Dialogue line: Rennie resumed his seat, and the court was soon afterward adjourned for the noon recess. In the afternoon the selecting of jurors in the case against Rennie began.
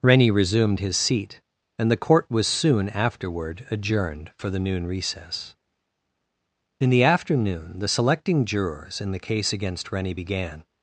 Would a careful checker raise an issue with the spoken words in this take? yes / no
yes